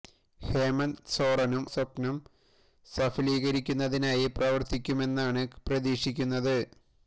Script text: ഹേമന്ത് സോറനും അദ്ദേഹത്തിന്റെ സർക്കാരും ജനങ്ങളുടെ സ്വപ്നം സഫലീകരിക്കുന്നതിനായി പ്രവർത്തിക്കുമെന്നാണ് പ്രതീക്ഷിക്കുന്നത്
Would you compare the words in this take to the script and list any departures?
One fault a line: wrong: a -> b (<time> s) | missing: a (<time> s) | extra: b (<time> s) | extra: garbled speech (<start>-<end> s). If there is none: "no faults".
missing: അദ്ദേഹത്തിന്റെ സർക്കാരും ജനങ്ങളുടെ (1.6 s)